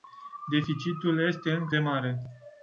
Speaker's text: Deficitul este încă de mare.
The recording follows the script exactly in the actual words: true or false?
true